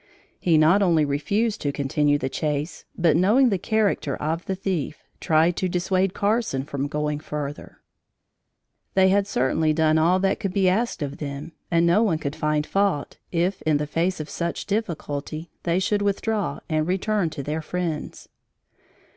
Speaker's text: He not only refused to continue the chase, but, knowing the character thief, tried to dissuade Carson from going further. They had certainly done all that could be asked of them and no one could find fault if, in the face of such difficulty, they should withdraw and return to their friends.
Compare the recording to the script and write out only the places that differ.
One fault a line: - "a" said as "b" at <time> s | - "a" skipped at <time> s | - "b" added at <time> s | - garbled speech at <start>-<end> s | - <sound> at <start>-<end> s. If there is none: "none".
- "of the" added at 4.2 s